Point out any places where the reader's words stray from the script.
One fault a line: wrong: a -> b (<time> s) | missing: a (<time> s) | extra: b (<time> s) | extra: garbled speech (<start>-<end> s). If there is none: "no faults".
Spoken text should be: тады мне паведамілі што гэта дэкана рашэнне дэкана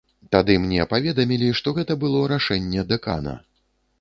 wrong: дэкана -> было (2.0 s)